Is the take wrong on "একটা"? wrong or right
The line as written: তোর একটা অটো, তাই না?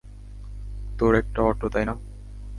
right